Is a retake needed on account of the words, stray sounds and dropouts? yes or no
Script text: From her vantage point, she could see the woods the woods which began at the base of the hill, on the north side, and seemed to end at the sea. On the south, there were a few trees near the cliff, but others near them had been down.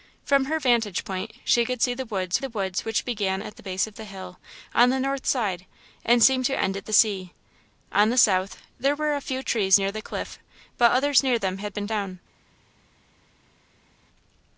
no